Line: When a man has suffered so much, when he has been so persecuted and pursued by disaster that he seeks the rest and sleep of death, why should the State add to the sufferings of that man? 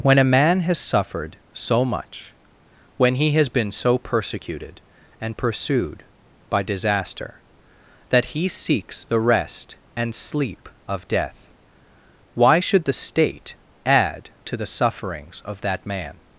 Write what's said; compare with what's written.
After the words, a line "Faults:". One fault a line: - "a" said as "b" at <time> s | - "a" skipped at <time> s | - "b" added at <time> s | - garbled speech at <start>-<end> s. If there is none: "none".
When a man has suffered so much, when he has been so persecuted and pursued by disaster that he seeks the rest and sleep of death, why should the State add to the sufferings of that man?
Faults:
none